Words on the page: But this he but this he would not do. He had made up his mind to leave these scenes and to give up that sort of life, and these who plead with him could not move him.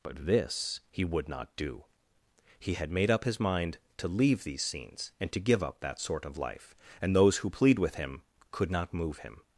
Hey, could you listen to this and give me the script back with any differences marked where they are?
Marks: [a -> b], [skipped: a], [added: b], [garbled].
But this he [skipped: but this he] would not do. He had made up his mind to leave these scenes and to give up that sort of life, and [these -> those] who plead with him could not move him.